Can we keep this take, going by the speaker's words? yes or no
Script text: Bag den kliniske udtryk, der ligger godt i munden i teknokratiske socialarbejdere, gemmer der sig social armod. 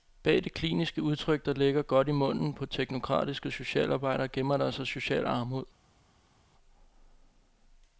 no